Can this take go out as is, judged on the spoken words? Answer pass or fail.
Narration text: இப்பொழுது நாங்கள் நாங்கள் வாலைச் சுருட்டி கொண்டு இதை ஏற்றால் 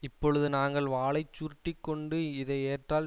fail